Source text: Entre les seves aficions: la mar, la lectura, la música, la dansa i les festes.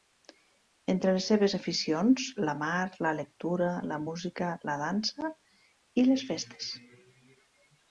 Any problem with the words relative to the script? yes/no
no